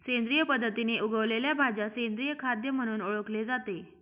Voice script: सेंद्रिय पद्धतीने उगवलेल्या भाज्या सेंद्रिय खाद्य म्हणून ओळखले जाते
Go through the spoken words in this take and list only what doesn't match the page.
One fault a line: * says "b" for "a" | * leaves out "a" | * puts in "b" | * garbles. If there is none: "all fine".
all fine